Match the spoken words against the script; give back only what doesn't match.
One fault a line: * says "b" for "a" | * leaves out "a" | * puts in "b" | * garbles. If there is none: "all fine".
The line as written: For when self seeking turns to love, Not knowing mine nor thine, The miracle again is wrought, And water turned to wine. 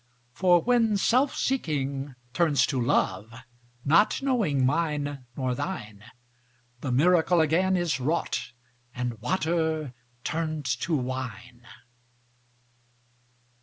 all fine